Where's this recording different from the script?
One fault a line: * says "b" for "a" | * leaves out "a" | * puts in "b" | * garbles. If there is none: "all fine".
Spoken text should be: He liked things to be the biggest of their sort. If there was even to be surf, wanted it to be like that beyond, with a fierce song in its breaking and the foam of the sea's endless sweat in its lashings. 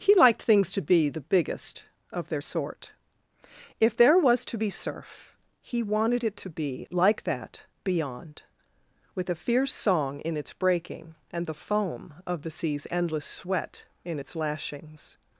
* leaves out "even"
* puts in "he"